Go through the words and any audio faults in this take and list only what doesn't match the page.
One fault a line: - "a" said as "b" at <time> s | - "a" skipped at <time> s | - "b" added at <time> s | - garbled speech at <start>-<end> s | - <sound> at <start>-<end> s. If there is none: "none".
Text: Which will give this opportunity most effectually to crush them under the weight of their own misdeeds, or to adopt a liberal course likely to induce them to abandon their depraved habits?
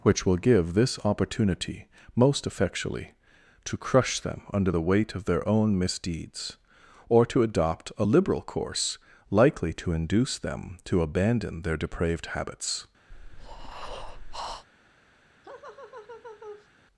- breath at 13.1-14.7 s
- laugh at 15.4-16.7 s